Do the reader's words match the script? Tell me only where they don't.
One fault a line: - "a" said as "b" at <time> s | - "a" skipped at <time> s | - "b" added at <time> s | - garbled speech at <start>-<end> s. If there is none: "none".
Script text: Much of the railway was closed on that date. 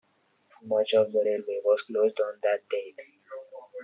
none